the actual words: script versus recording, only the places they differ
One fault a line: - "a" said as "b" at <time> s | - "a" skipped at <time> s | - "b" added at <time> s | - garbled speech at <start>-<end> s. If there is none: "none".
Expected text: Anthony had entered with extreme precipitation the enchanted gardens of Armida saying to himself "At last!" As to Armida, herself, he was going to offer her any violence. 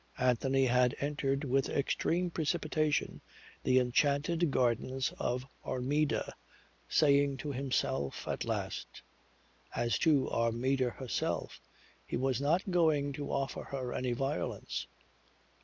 - "not" added at 12.4 s